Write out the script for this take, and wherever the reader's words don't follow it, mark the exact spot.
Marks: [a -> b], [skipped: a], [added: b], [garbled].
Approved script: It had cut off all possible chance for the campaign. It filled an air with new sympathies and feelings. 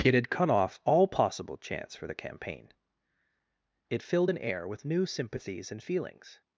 It had cut off all possible chance for the campaign. It filled an air with new sympathies and feelings.